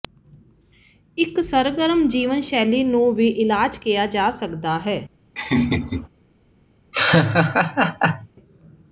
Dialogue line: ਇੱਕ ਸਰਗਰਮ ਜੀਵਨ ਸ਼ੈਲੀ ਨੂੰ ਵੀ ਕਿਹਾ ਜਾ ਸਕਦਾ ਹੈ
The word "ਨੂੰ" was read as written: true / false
true